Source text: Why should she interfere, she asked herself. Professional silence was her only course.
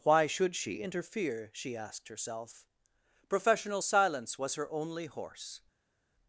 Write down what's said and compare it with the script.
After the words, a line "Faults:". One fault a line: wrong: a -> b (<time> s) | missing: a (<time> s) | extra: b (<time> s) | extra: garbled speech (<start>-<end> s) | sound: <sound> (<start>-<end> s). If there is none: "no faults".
Why should she interfere, she asked herself. Professional silence was her only horse.
Faults:
wrong: course -> horse (5.1 s)